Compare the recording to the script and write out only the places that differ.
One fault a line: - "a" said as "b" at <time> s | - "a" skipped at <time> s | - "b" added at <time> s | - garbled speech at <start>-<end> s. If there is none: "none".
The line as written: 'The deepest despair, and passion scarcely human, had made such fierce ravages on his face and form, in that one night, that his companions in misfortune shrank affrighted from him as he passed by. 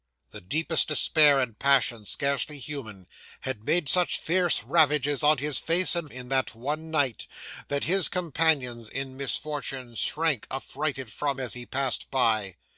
- "form" skipped at 6.1 s
- "him" skipped at 11.4 s